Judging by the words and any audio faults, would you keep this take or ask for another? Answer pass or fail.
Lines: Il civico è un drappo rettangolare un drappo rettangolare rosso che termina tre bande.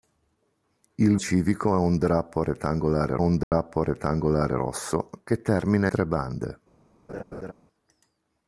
fail